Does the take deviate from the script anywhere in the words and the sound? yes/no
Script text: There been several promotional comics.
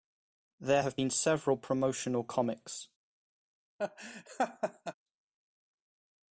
yes